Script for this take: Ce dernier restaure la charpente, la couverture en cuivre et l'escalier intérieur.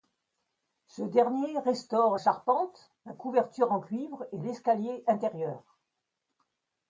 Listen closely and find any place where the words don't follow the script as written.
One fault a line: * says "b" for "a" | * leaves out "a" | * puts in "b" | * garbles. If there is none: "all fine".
* leaves out "la"